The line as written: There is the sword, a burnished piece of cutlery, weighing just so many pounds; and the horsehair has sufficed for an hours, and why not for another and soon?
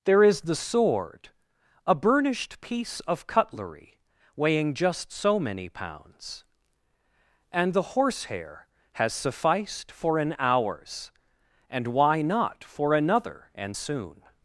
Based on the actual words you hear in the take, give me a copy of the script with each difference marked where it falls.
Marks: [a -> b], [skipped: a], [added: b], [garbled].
There is the sword, a burnished piece of cutlery, weighing just so many pounds; and the horsehair has sufficed for an hours, and why not for another and soon?